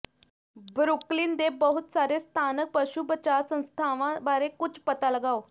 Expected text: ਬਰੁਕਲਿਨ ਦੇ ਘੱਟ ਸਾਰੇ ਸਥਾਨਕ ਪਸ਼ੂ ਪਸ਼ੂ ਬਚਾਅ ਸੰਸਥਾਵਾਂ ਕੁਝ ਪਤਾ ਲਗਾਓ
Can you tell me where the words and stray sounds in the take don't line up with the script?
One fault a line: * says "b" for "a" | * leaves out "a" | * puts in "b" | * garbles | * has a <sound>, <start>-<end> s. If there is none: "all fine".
* says "ਬਹੁਤ" for "ਘੱਟ"
* leaves out "ਪਸ਼ੂ"
* puts in "ਬਾਰੇ"